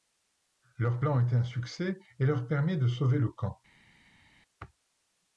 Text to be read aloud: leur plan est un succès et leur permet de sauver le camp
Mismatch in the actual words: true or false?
false